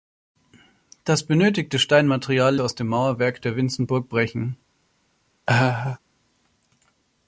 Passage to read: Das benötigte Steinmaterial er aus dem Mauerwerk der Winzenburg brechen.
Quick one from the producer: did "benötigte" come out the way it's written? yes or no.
yes